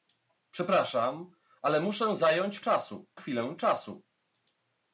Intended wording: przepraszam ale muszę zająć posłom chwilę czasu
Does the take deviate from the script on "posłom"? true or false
true